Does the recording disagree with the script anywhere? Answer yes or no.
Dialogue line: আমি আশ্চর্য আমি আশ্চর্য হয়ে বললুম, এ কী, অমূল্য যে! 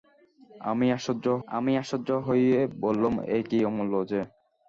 no